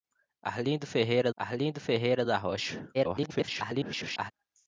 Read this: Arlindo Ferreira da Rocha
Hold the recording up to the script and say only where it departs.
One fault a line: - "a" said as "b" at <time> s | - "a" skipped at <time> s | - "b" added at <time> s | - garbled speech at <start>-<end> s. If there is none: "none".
- "arlindo Ferreira" added at 1.4 s
- garbled speech at 2.9-4.3 s